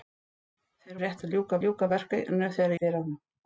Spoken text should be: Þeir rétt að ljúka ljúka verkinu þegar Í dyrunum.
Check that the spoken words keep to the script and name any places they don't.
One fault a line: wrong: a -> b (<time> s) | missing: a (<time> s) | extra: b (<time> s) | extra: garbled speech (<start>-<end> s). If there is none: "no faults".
no faults